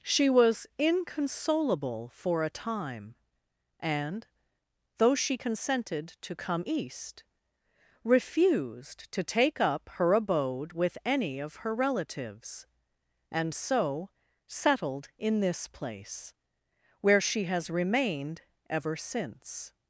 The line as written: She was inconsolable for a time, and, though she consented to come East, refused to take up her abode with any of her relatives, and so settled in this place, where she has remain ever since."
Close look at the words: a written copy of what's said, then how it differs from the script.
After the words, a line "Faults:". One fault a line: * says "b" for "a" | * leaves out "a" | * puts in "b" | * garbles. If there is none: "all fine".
She was inconsolable for a time, and, though she consented to come East, refused to take up her abode with any of her relatives, and so settled in this place, where she has remained ever since."
Faults:
* says "remained" for "remain"